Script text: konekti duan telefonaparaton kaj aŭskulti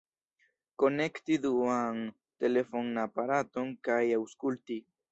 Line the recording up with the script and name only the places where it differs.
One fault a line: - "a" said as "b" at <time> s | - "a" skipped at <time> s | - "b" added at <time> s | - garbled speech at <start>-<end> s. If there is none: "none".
none